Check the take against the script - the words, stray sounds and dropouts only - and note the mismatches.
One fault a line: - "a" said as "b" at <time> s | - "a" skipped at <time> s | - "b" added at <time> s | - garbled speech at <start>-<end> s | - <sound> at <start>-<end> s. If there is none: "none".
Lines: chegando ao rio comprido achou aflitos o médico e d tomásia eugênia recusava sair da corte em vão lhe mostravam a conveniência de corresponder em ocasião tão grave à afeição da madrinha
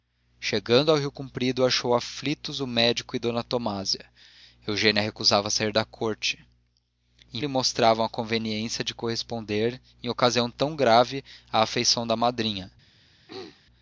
- "vão" skipped at 7.4 s
- throat clearing at 13.3-13.6 s